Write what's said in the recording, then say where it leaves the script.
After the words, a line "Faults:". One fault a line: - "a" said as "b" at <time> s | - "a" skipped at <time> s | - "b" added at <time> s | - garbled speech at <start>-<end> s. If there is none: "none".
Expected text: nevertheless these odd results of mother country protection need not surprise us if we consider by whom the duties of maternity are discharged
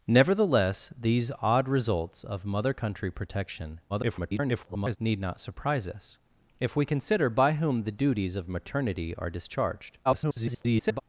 nevertheless these odd results of mother country protection [garbled] need not surprise us if we consider by whom the duties of maternity are discharged [garbled]
Faults:
- garbled speech at 3.9-5.0 s
- garbled speech at 10.0-11.0 s